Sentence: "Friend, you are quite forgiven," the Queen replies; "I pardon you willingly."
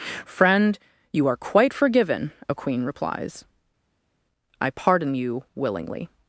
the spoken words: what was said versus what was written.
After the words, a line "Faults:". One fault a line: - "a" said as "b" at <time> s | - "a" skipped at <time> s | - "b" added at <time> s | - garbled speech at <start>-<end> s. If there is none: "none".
"Friend, you are quite forgiven," a Queen replies; "I pardon you willingly."
Faults:
- "the" said as "a" at 2.5 s